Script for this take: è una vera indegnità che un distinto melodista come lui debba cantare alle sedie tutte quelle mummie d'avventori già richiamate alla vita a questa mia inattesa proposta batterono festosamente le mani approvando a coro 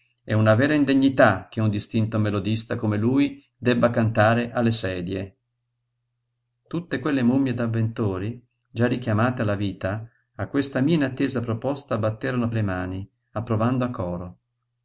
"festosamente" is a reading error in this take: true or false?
true